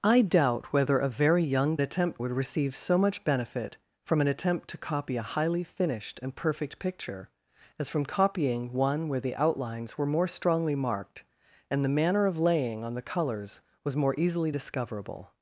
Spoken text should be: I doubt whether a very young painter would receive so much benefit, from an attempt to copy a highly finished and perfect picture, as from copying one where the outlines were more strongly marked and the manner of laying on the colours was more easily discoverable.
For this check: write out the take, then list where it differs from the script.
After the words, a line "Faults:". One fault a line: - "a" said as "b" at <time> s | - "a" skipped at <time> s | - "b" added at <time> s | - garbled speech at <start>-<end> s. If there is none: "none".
I doubt whether a very young attempt would receive so much benefit, from an attempt to copy a highly finished and perfect picture, as from copying one where the outlines were more strongly marked and the manner of laying on the colours was more easily discoverable.
Faults:
- "painter" said as "attempt" at 1.8 s